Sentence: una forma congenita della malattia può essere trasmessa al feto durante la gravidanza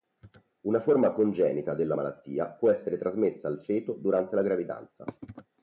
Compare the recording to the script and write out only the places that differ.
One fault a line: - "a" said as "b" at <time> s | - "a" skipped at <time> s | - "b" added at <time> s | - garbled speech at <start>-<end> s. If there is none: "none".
none